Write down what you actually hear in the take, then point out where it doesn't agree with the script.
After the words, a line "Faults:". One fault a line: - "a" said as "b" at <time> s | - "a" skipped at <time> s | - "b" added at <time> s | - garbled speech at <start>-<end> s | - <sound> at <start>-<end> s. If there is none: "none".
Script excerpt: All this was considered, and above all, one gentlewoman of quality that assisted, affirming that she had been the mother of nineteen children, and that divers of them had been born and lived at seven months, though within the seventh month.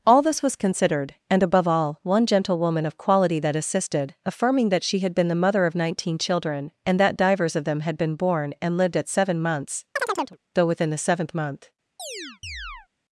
All this was considered, and above all, one gentlewoman of quality that assisted, affirming that she had been the mother of nineteen children, and that divers of them had been born and lived at seven months, though within the seventh month.
Faults:
- chirp at 10.0-10.4 s
- chirp at 12.0-12.9 s